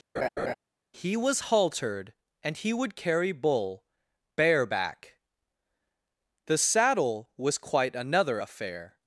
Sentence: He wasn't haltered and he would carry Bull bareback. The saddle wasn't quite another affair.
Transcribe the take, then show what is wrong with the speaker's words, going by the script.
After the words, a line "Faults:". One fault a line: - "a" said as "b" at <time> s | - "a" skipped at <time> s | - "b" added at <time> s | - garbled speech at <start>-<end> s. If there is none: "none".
He was haltered and he would carry Bull bareback. The saddle was quite another affair.
Faults:
- "wasn't" said as "was" at 1.2 s
- "wasn't" said as "was" at 7.4 s